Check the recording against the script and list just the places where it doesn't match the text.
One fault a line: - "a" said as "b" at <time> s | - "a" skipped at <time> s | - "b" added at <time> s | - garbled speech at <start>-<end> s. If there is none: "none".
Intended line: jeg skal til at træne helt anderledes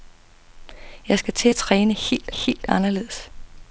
- "helt" added at 2.3 s